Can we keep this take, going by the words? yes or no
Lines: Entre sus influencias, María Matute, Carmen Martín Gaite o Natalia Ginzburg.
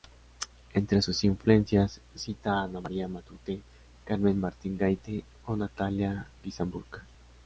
no